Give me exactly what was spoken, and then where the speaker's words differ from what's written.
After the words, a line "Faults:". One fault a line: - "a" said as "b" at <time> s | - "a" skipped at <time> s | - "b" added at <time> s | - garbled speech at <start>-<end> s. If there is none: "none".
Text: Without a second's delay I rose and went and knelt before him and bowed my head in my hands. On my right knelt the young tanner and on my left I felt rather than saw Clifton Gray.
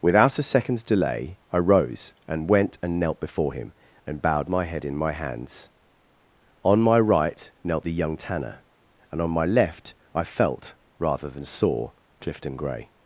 Without a second's delay I rose and went and knelt before him and bowed my head in my hands. On my right knelt the young tanner and on my left I felt rather than saw Clifton Gray.
Faults:
none